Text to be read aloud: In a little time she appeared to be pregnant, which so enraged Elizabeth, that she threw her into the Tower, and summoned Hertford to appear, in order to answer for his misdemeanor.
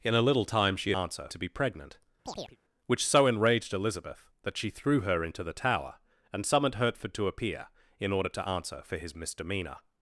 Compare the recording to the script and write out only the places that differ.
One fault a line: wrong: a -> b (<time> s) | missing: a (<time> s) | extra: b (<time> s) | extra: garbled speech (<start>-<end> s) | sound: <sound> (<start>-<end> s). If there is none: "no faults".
wrong: appeared -> answer (1.0 s)
sound: chirp (2.2-2.6 s)